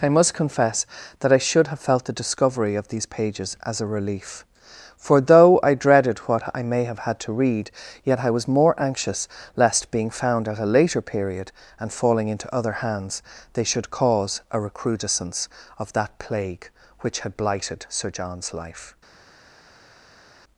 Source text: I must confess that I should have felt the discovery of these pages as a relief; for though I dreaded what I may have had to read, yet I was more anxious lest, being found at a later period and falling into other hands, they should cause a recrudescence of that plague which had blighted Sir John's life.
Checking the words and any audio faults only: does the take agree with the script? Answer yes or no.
yes